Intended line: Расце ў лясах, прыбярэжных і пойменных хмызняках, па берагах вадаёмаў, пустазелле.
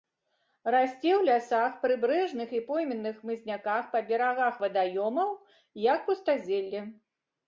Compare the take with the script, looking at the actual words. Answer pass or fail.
fail